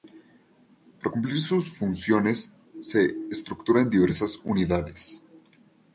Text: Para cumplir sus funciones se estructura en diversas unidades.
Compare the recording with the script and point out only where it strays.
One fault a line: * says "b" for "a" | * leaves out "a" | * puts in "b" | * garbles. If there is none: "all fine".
all fine